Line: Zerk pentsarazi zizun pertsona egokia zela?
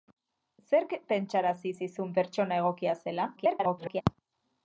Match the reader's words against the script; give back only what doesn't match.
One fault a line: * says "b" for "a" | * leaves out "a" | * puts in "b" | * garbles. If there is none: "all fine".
* garbles